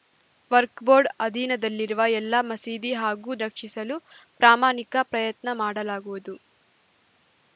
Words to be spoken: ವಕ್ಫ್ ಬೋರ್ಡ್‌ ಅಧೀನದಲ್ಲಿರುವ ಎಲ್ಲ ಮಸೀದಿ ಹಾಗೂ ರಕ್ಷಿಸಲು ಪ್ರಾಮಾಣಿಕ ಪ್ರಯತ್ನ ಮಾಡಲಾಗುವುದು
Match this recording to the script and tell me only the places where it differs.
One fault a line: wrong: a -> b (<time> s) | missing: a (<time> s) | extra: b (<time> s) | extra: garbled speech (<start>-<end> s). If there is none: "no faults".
no faults